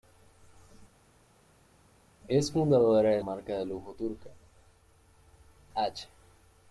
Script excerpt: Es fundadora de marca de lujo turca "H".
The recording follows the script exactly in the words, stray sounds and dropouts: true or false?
true